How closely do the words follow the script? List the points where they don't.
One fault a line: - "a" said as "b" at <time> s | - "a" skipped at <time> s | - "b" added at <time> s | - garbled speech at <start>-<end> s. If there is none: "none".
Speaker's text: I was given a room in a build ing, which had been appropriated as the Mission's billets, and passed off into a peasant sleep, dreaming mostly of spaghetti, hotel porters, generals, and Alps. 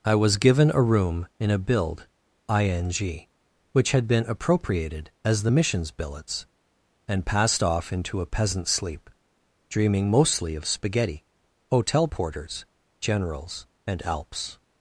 none